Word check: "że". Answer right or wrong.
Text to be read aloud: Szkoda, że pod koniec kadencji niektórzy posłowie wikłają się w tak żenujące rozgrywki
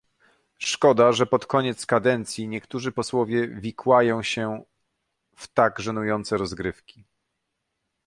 right